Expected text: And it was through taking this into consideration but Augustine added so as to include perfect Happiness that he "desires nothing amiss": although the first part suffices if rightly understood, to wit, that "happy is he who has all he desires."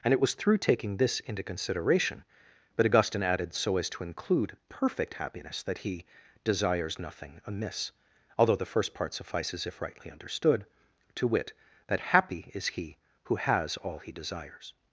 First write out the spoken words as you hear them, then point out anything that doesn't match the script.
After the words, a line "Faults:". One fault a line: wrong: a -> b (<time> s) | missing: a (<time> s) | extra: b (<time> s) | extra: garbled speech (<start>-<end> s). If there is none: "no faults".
And it was through taking this into consideration but Augustine added so as to include perfect Happiness that he "desires nothing amiss": although the first part suffices if rightly understood, to wit, that "happy is he who has all he desires."
Faults:
no faults